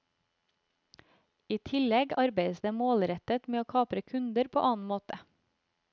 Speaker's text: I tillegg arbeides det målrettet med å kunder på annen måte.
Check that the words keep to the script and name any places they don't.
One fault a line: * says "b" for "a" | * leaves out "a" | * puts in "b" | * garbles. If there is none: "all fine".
* puts in "kapre"